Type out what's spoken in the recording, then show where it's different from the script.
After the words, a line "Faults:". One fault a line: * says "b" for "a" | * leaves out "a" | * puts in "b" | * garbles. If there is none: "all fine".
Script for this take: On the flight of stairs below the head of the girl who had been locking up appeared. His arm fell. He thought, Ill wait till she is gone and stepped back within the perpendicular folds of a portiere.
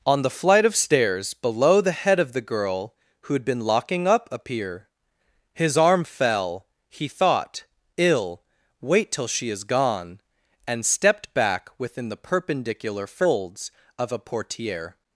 On the flight of stairs below the head of the girl who had been locking up appear. His arm fell. He thought, Ill wait till she is gone and stepped back within the perpendicular folds of a portiere.
Faults:
* says "appear" for "appeared"